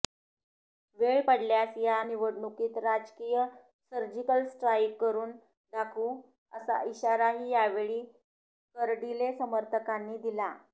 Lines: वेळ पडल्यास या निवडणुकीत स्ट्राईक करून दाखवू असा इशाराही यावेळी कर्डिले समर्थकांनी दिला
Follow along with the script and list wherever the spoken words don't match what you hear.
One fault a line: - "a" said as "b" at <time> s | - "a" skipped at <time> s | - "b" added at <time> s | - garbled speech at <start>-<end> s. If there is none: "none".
- "राजकीय सर्जिकल" added at 2.8 s